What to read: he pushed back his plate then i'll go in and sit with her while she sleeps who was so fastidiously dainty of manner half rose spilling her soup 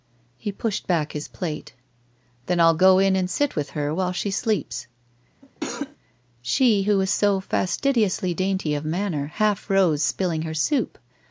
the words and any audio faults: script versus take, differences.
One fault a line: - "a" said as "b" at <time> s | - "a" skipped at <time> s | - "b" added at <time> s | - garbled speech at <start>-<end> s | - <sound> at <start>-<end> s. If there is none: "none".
- cough at 5.4-6.0 s
- "she" added at 6.4 s